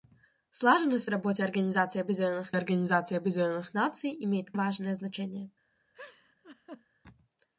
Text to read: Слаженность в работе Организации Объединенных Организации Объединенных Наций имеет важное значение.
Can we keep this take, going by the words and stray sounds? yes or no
no